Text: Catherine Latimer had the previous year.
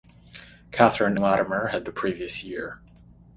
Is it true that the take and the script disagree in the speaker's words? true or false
false